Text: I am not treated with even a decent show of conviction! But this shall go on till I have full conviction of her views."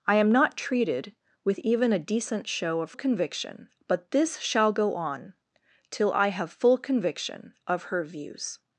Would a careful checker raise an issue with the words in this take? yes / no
no